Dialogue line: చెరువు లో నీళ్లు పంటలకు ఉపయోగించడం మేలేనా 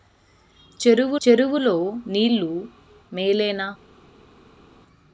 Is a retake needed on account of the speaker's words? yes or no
yes